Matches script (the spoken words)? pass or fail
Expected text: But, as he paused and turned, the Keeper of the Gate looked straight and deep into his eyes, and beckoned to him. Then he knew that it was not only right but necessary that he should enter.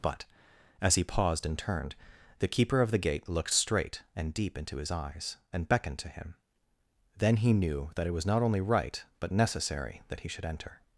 pass